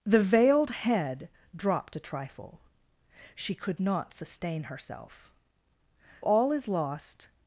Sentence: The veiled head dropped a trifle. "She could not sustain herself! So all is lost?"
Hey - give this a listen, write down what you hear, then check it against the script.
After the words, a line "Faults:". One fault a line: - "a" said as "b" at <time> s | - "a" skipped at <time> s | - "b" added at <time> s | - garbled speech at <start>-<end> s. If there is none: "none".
The veiled head dropped a trifle. "She could not sustain herself! All is lost?"
Faults:
- "So" skipped at 5.3 s